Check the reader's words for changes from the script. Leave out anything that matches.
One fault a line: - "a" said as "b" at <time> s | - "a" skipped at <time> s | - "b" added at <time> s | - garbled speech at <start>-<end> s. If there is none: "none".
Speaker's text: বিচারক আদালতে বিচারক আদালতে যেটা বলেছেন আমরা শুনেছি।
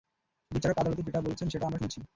- "বিচারক আদালতে" skipped at 1.0 s
- "সেটা" added at 1.5 s